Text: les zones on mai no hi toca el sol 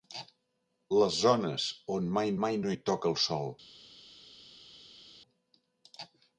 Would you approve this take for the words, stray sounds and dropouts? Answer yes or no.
no